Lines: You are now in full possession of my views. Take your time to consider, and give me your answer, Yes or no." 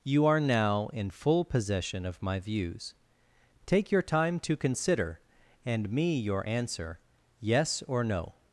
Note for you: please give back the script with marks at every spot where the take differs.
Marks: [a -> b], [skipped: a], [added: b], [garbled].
You are now in full possession of my views. Take your time to consider, and [skipped: give] me your answer, Yes or no."